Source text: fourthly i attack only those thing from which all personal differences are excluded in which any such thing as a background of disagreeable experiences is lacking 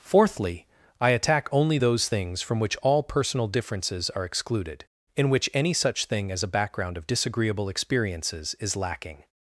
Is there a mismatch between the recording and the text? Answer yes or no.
yes